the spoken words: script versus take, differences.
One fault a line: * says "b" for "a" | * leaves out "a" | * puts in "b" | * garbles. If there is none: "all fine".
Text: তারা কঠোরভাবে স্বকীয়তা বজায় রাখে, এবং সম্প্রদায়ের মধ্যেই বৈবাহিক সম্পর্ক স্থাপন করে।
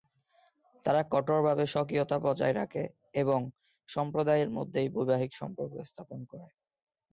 all fine